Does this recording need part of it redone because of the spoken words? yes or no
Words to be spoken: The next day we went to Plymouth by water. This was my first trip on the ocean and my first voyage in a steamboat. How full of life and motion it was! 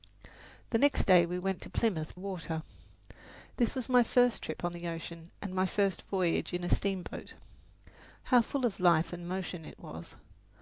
yes